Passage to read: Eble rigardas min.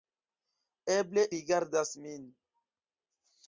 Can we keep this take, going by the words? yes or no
yes